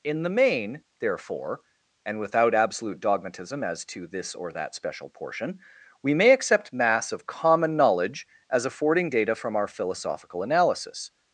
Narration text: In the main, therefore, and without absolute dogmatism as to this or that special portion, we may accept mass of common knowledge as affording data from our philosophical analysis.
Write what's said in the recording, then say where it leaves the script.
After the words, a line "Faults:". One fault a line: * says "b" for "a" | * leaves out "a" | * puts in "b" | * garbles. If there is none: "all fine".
In the main, therefore, and without absolute dogmatism as to this or that special portion, we may accept mass of common knowledge as affording data from our philosophical analysis.
Faults:
all fine